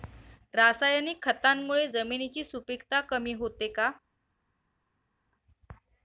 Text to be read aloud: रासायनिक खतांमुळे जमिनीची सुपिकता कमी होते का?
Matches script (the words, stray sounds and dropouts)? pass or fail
pass